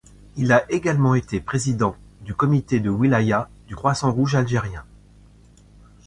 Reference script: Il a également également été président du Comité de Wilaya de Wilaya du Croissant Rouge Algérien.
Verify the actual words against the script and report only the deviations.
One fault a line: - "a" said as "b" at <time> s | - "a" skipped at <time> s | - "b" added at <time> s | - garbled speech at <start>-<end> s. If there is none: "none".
- "également" skipped at 1.1 s
- "de Wilaya" skipped at 3.5 s